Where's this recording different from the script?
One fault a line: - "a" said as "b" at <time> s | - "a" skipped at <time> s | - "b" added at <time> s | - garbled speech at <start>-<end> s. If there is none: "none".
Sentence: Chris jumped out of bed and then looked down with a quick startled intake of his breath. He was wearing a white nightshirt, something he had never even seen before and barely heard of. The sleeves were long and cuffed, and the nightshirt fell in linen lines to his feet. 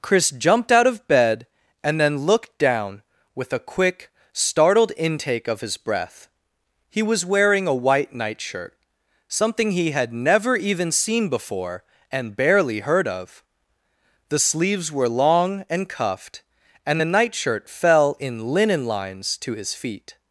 none